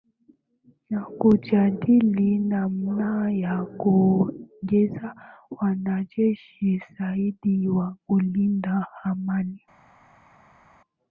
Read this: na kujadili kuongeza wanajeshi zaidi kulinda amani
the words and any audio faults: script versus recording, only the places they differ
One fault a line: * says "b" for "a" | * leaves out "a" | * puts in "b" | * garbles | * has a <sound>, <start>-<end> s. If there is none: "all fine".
* puts in "namna ya"
* puts in "wa"